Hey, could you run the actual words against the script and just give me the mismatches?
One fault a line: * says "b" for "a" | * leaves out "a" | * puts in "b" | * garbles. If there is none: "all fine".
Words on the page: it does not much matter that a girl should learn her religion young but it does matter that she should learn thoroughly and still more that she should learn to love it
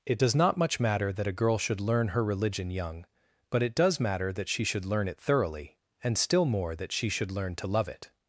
* puts in "it"